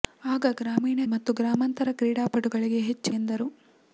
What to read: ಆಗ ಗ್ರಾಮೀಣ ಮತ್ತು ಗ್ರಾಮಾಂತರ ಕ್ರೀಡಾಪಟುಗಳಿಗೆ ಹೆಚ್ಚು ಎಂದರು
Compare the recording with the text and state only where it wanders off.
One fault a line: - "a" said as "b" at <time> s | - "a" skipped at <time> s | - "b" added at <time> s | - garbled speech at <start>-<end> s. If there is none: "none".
none